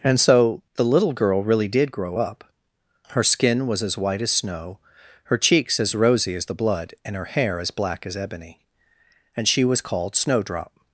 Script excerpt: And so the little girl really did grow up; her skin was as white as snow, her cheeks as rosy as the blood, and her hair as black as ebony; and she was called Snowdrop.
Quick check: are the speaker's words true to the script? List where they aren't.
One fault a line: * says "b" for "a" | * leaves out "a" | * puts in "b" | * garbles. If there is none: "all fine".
all fine